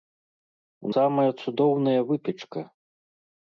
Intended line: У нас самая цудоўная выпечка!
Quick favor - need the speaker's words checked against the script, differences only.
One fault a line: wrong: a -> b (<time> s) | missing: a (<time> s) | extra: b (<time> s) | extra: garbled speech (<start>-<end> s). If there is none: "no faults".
missing: нас (0.9 s)